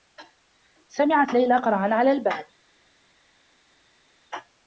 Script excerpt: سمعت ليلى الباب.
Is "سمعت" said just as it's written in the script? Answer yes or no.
yes